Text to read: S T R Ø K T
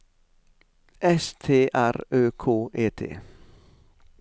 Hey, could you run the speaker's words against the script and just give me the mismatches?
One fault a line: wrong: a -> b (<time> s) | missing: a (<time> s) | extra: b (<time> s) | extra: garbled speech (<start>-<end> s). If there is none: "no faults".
extra: E (2.7 s)